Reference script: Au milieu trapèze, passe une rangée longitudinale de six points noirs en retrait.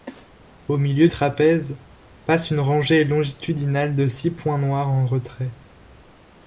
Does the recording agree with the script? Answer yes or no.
yes